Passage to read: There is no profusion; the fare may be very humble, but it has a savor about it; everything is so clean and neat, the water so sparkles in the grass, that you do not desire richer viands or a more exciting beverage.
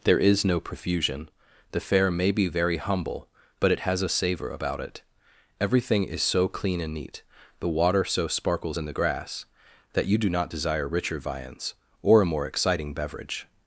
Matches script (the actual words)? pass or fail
pass